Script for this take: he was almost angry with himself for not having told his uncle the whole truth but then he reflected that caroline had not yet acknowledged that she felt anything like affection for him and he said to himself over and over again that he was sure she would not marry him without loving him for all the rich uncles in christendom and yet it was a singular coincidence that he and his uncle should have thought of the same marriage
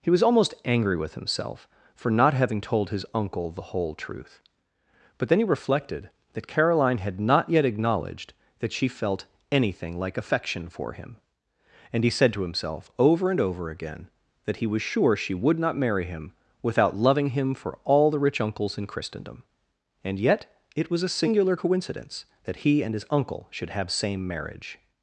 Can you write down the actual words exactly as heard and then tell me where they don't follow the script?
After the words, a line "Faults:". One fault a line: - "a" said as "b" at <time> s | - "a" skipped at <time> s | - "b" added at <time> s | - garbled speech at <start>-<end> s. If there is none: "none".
he was almost angry with himself for not having told his uncle the whole truth but then he reflected that caroline had not yet acknowledged that she felt anything like affection for him and he said to himself over and over again that he was sure she would not marry him without loving him for all the rich uncles in christendom and yet it was a singular coincidence that he and his uncle should have same marriage
Faults:
- "thought of the" skipped at 23.9 s